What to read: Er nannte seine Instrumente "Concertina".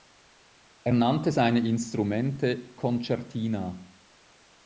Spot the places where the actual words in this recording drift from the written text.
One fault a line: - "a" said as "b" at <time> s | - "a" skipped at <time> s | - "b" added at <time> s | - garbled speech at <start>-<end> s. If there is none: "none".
none